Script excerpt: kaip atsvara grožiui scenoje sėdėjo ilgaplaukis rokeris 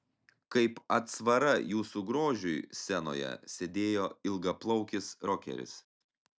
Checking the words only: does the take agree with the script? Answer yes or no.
no